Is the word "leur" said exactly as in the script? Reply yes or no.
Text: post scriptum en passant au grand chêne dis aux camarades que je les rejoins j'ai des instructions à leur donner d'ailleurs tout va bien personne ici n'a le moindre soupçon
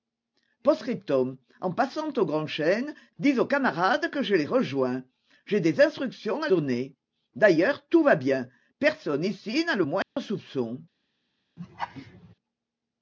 no